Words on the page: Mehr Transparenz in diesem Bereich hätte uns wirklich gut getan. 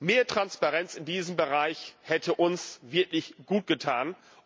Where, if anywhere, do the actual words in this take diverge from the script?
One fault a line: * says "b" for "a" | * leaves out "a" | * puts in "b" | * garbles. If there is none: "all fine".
all fine